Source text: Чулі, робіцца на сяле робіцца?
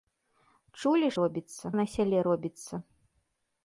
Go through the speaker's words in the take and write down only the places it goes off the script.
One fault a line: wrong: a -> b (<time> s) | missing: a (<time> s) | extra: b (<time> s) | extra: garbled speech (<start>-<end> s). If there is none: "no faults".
no faults